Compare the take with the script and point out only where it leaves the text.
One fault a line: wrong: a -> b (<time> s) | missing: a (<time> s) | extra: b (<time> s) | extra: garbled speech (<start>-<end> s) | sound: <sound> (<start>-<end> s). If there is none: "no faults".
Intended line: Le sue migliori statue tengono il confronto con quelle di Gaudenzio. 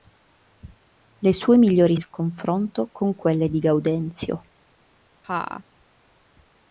missing: statue tengono (1.9 s)
sound: laugh (5.2-5.6 s)